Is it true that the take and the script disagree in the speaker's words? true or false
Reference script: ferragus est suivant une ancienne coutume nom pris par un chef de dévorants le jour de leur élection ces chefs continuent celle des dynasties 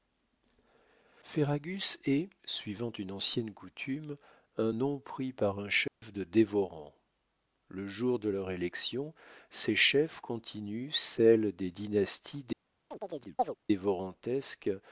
true